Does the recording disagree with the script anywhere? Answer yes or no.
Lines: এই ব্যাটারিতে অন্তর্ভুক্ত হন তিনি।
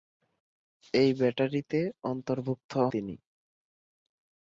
yes